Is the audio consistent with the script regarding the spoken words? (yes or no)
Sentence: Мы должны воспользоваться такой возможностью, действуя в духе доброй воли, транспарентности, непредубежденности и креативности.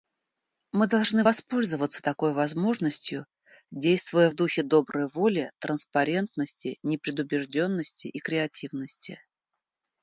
yes